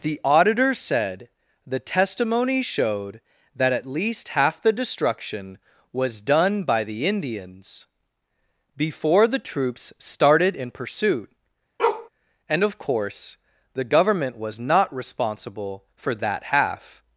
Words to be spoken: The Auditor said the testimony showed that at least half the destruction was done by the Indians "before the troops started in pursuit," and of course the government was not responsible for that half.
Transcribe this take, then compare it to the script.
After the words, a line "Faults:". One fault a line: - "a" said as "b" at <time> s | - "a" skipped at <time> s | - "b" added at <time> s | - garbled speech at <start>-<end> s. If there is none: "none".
The Auditor said the testimony showed that at least half the destruction was done by the Indians "before the troops started in pursuit," and of course the government was not responsible for that half.
Faults:
none